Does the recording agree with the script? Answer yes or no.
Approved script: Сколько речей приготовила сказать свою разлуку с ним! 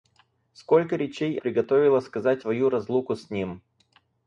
yes